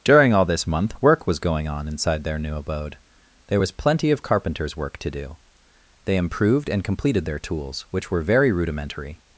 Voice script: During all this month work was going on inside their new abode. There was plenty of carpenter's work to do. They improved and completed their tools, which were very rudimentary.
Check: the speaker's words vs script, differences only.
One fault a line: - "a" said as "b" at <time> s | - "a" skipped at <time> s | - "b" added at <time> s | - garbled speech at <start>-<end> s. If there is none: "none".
none